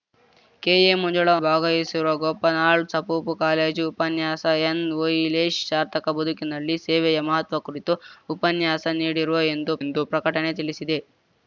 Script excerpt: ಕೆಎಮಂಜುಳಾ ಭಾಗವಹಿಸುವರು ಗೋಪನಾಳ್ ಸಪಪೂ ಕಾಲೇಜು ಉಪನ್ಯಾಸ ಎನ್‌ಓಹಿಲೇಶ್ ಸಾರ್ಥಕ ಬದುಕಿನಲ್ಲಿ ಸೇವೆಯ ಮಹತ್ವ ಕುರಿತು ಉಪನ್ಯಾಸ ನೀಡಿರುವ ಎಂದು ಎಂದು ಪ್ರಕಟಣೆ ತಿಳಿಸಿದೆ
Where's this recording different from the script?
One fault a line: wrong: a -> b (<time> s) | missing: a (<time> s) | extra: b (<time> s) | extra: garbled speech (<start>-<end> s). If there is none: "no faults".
no faults